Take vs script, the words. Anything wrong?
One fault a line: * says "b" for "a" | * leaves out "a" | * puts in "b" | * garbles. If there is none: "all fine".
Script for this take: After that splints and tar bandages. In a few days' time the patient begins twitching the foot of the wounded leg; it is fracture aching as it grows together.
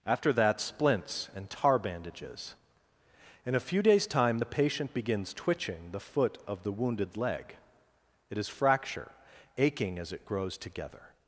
all fine